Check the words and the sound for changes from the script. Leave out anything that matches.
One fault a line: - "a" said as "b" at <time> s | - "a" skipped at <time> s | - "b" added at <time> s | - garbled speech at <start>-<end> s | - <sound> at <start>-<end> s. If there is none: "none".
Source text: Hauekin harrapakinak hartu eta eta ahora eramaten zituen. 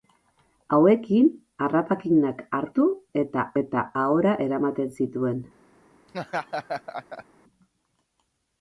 - laugh at 6.1-7.3 s